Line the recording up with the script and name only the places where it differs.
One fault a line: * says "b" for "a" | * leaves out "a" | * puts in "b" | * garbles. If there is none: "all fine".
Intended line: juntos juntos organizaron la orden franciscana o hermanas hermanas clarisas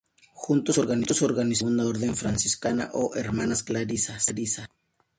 * leaves out "juntos"
* puts in "segunda"
* leaves out "hermanas"